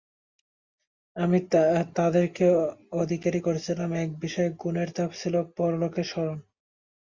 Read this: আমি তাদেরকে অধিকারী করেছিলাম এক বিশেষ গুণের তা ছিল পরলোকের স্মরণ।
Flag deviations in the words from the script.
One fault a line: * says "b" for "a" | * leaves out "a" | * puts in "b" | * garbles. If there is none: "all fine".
all fine